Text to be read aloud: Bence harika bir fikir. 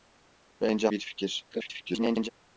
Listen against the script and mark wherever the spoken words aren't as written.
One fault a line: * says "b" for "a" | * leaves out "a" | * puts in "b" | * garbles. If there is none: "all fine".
* leaves out "harika"
* garbles